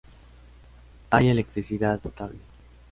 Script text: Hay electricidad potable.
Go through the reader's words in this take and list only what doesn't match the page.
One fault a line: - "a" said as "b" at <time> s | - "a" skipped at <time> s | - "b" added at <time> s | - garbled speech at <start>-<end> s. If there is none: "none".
none